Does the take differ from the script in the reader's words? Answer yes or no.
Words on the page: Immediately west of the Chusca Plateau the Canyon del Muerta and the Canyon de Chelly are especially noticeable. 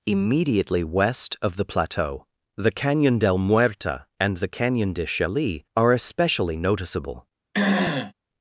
yes